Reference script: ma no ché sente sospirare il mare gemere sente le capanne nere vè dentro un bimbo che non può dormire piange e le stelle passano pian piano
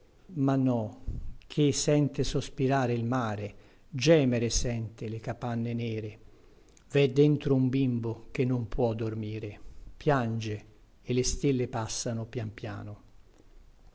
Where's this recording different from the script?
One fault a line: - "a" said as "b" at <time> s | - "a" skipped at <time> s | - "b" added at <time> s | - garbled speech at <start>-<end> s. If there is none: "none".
none